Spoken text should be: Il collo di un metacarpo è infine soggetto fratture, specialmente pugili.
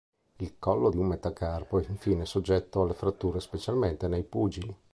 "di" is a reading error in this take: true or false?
false